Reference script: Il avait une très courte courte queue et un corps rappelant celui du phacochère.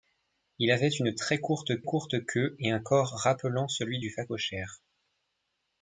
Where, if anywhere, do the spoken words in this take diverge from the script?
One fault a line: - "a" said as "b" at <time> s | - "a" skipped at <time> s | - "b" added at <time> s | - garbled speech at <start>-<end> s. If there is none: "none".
none